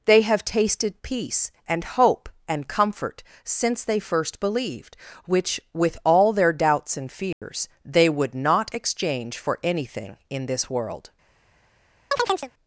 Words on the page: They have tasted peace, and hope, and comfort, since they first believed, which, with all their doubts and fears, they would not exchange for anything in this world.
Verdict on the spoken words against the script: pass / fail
pass